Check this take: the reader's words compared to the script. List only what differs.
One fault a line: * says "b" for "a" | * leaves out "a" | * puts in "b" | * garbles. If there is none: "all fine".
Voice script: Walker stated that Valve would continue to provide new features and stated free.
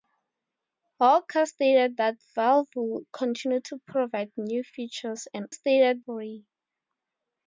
all fine